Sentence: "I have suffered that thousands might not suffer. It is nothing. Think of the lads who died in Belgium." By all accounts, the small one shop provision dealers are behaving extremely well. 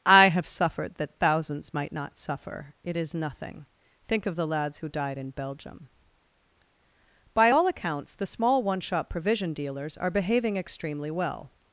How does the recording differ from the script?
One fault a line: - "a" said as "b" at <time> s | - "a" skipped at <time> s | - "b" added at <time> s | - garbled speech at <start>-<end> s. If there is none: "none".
none